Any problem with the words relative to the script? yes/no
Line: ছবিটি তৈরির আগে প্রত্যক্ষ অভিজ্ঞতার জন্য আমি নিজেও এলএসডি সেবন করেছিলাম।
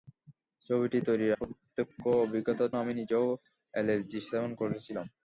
yes